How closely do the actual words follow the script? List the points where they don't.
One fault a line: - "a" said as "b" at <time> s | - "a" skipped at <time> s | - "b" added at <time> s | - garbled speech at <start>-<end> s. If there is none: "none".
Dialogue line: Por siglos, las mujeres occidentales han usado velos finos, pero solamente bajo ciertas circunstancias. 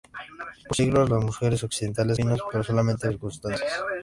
- "han usado velos" skipped at 2.2 s
- "bajo ciertas" skipped at 3.1 s